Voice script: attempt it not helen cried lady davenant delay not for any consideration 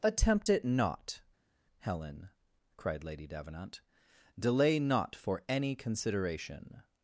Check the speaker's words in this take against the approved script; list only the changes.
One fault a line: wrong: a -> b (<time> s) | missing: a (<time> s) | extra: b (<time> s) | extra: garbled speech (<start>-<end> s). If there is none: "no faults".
no faults